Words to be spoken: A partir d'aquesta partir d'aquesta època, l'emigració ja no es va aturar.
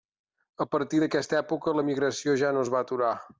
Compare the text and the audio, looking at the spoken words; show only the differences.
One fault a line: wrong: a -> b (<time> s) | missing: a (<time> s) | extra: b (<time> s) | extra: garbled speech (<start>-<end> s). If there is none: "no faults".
missing: partir d'aquesta (1.4 s)